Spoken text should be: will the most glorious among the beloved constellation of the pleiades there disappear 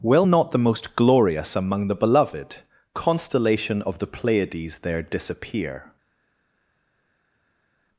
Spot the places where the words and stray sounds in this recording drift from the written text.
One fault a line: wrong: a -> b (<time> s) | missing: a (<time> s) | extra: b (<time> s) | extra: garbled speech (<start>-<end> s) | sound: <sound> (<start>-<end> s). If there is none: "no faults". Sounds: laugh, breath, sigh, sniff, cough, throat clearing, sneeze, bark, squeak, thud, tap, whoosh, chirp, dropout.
extra: not (0.2 s)